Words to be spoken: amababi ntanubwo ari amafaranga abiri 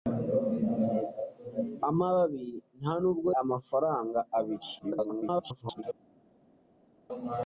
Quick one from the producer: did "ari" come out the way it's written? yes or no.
no